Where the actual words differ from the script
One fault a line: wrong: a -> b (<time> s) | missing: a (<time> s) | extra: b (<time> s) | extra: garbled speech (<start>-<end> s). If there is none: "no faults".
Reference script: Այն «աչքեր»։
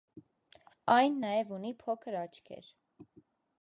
extra: նաև ունի փոքր (1.2 s)